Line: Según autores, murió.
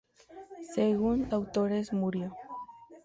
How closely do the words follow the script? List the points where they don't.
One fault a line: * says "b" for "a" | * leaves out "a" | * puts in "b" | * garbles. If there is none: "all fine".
all fine